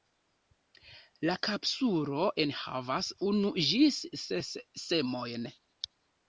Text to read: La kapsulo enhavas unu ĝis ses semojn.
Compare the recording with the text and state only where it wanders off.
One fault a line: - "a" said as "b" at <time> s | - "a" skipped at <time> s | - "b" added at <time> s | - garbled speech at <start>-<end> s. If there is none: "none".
none